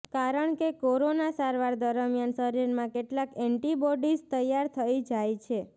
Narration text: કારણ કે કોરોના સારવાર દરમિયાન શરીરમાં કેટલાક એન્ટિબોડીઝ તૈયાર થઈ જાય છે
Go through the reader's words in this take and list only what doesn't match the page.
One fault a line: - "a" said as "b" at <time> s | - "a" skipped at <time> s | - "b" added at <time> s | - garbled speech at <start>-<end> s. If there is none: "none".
none